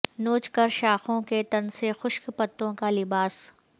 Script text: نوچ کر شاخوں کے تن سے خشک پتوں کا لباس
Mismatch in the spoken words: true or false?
false